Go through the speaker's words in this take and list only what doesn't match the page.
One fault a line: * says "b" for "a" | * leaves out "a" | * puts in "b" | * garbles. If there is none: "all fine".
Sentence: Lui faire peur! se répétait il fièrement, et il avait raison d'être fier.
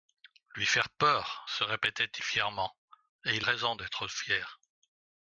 * leaves out "il"
* leaves out "avait"